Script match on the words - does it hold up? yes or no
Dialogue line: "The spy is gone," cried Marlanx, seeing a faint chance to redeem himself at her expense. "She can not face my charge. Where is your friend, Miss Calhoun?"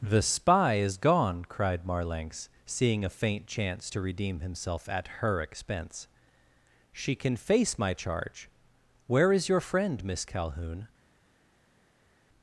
no